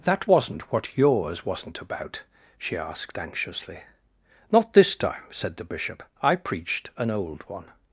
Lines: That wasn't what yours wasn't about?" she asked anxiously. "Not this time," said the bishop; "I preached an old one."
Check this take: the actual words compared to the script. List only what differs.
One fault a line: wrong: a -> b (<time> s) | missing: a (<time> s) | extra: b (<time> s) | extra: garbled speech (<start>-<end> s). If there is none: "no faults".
no faults